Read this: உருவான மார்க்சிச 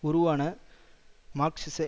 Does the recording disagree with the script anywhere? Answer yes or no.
no